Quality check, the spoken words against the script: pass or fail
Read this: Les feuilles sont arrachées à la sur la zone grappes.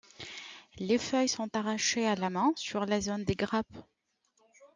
fail